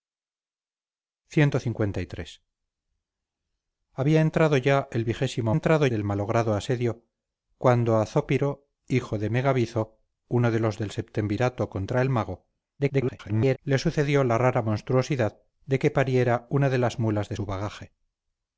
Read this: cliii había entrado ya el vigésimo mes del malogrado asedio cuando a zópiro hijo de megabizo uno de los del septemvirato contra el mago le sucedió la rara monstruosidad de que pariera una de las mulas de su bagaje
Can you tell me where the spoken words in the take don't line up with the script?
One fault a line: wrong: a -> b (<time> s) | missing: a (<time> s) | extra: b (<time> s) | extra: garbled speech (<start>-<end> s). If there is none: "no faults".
wrong: mes -> entrado (5.5 s)
extra: garbled speech (12.8-13.6 s)